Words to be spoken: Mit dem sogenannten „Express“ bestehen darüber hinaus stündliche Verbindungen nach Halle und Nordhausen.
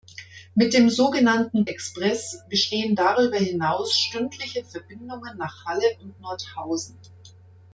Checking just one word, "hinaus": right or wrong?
right